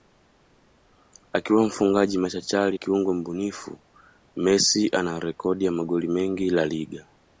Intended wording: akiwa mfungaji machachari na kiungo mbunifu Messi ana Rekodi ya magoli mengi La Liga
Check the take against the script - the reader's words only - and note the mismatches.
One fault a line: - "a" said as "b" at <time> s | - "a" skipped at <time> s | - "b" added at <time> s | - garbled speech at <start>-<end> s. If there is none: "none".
- "na" skipped at 2.8 s